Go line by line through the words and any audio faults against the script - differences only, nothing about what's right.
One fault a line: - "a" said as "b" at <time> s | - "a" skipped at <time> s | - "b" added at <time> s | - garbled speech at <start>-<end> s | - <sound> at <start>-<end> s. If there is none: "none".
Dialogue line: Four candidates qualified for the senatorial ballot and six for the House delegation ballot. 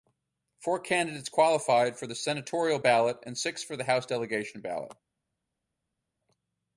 none